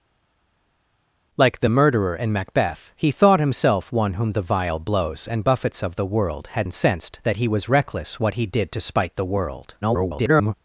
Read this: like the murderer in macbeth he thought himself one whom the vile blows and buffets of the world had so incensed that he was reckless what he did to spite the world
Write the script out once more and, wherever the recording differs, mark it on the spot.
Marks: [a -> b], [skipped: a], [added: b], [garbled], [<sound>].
like the murderer in macbeth he thought himself one whom the vile blows and buffets of the world had [skipped: so] incensed that he was reckless what he did to spite the world [garbled]